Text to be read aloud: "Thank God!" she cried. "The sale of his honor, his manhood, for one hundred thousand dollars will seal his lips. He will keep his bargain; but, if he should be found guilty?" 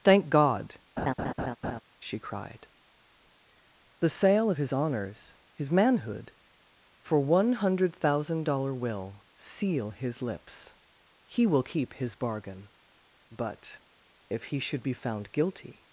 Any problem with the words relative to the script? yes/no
yes